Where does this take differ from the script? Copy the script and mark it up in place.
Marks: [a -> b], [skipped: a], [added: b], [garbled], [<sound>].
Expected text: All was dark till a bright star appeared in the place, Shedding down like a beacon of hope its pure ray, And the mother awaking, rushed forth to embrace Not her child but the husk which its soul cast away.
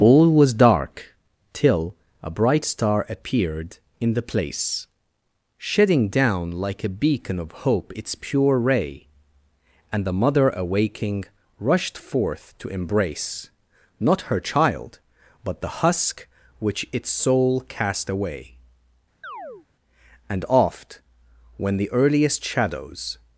All was dark till a bright star appeared in the place, Shedding down like a beacon of hope its pure ray, And the mother awaking, rushed forth to embrace Not her child but the husk which its soul cast away. [chirp] [added: And oft when the earliest shadows]